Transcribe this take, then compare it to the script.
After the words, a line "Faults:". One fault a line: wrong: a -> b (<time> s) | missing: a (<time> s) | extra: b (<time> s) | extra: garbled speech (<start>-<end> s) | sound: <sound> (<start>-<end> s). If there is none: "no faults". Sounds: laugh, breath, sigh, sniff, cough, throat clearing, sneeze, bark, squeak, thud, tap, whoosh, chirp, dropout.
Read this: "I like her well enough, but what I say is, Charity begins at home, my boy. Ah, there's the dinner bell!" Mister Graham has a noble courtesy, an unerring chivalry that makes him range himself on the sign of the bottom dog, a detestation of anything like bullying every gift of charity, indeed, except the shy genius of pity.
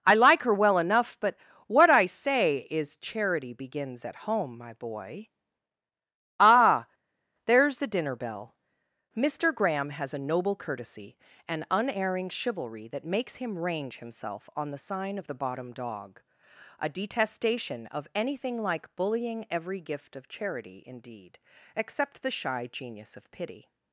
"I like her well enough, but what I say is, Charity begins at home, my boy. Ah, there's the dinner bell!" Mister Graham has a noble courtesy, an unerring chivalry that makes him range himself on the sign of the bottom dog, a detestation of anything like bullying every gift of charity, indeed, except the shy genius of pity.
Faults:
no faults